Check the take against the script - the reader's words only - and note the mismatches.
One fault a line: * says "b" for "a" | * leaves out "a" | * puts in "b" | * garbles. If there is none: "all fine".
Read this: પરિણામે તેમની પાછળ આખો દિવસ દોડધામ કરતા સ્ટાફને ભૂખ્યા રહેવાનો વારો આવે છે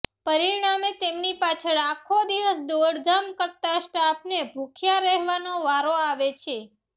all fine